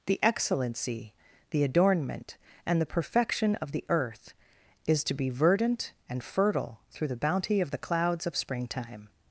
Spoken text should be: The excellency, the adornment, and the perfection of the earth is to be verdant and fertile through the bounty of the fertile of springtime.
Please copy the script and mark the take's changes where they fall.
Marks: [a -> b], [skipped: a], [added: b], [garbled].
The excellency, the adornment, and the perfection of the earth is to be verdant and fertile through the bounty of the [fertile -> clouds] of springtime.